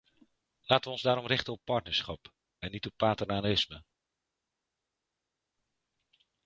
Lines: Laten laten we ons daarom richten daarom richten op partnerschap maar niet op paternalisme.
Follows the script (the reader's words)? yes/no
no